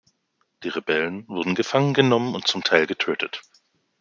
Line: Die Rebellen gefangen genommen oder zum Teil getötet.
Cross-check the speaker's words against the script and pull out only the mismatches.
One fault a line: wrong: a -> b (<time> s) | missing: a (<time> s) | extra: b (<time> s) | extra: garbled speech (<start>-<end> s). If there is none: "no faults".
extra: wurden (1.3 s)
wrong: oder -> und (2.3 s)